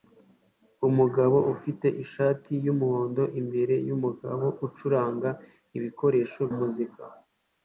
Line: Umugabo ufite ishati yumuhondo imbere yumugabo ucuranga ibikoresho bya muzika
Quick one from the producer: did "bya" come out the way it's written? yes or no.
no